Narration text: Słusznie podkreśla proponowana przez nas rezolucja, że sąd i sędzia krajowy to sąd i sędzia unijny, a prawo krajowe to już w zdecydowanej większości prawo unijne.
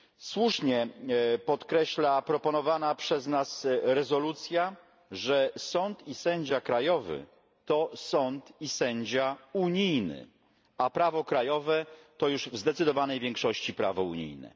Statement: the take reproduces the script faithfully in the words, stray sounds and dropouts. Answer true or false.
true